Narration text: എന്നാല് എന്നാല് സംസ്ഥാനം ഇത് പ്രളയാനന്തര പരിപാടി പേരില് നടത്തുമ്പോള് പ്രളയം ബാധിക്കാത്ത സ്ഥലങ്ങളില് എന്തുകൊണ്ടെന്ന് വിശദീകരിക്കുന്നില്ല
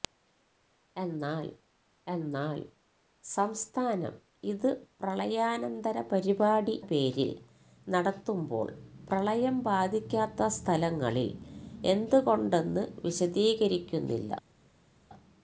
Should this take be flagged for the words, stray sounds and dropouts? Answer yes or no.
no